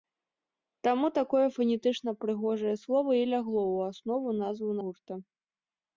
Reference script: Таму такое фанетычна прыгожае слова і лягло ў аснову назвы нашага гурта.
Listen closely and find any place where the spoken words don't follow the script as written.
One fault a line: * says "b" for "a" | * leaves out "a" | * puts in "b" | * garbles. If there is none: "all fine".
* leaves out "нашага"